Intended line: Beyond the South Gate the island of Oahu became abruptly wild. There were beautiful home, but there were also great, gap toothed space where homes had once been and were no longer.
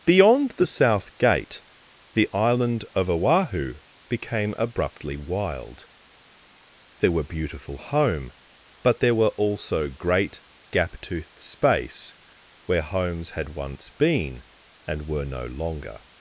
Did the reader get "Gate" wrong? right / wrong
right